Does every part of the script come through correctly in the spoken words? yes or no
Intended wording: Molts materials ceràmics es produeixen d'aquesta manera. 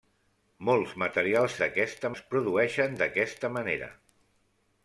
no